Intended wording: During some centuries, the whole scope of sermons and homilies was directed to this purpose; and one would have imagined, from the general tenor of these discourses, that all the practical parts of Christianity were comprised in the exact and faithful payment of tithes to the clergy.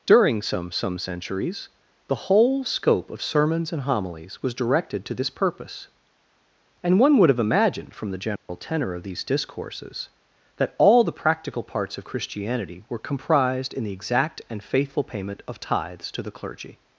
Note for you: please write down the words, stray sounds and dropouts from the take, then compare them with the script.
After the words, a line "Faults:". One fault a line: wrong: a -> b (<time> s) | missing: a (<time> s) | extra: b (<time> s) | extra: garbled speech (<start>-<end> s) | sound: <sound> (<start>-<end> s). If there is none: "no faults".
During some some centuries, the whole scope of sermons and homilies was directed to this purpose; and one would have imagined, from the general tenor of these discourses, that all the practical parts of Christianity were comprised in the exact and faithful payment of tithes to the clergy.
Faults:
extra: some (0.7 s)
sound: dropout (8.4-8.5 s)